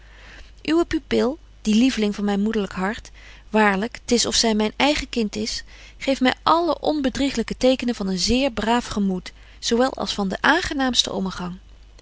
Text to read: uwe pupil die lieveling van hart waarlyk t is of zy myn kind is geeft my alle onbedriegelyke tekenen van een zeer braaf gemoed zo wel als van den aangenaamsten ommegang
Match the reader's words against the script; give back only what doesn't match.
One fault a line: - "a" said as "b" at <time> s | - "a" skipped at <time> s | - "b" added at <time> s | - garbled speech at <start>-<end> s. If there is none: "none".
- "myn moederlyk" added at 2.2 s
- "eigen" added at 4.8 s